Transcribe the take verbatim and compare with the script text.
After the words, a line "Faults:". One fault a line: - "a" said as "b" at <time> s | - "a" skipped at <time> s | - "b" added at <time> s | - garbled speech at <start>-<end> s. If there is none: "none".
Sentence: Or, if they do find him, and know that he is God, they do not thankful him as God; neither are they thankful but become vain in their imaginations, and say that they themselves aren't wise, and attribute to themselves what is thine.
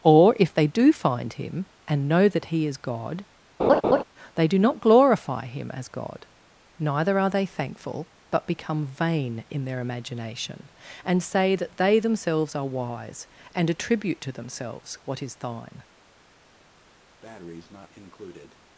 Or, if they do find him, and know that he is God, they do not glorify him as God; neither are they thankful but become vain in their imagination, and say that they themselves are wise, and attribute to themselves what is thine.
Faults:
- "thankful" said as "glorify" at 4.8 s
- "imaginations" said as "imagination" at 9.8 s
- "aren't" said as "are" at 12.5 s